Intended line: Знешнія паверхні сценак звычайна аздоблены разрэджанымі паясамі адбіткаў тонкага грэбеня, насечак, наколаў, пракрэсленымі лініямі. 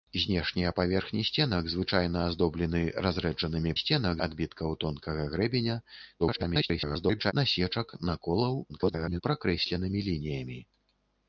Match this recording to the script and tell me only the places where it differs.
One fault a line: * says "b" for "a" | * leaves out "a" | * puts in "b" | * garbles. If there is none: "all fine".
* says "сценак" for "паясамі"
* garbles
* garbles